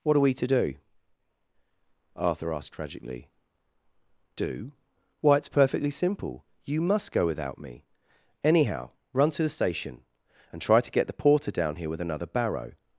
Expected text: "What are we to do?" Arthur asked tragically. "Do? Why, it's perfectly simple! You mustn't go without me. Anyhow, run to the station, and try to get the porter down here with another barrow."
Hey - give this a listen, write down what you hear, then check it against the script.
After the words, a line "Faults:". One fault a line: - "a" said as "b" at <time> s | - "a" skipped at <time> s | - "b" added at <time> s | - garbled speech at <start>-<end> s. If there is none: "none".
"What are we to do?" Arthur asked tragically. "Do? Why, it's perfectly simple! You must go without me. Anyhow, run to the station, and try to get the porter down here with another barrow."
Faults:
- "mustn't" said as "must" at 6.8 s